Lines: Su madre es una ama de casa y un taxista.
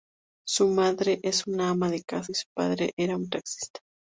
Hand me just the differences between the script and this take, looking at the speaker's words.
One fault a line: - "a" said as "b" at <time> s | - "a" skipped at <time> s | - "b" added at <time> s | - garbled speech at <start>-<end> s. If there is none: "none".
- "su padre era" added at 2.3 s